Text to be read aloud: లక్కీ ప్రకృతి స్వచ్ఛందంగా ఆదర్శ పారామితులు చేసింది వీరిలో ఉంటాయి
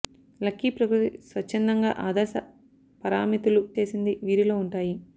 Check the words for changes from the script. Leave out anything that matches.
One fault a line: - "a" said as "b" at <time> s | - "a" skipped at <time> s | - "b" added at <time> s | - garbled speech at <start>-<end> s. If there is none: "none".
none